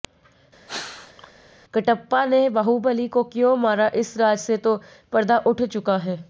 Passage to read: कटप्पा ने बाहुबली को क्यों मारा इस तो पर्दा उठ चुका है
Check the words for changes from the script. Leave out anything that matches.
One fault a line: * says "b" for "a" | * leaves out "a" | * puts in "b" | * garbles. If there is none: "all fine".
* puts in "राज से"